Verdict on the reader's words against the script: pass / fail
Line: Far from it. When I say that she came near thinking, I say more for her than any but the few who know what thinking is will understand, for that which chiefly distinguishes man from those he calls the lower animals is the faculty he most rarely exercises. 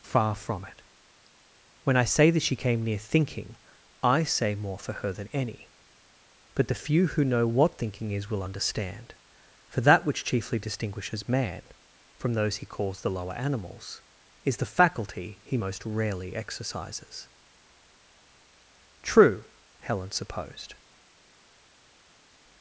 fail